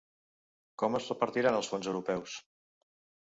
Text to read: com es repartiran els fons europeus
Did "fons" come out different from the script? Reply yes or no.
no